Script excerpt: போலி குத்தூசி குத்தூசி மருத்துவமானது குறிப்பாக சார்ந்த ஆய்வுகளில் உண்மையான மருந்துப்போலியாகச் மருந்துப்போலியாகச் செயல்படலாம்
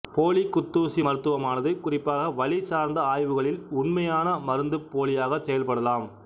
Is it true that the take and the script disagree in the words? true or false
true